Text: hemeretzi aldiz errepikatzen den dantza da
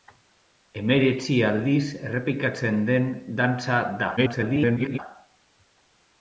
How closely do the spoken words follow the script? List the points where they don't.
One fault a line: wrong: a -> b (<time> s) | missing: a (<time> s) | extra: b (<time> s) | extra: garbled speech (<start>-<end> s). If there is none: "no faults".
extra: garbled speech (4.2-5.0 s)